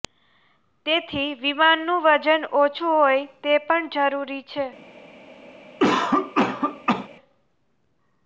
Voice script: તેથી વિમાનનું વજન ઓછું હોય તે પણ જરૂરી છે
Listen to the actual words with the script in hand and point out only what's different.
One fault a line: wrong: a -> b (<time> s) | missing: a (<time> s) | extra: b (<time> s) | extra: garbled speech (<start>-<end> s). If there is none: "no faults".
no faults